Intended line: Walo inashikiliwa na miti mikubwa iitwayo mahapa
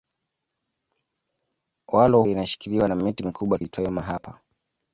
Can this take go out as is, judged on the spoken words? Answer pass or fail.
pass